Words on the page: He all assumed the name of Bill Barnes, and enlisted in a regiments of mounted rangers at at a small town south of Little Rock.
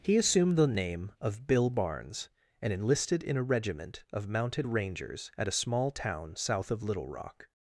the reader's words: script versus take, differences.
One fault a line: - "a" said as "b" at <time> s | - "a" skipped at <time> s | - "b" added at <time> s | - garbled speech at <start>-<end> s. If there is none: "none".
- "all" skipped at 0.2 s
- "regiments" said as "regiment" at 3.4 s
- "at" skipped at 5.5 s